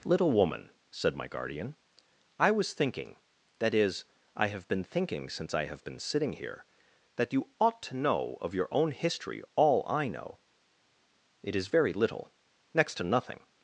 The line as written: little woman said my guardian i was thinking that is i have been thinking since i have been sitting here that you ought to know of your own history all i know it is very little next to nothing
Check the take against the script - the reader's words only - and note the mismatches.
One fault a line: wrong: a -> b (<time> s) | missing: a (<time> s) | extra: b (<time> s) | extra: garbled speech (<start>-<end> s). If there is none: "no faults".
no faults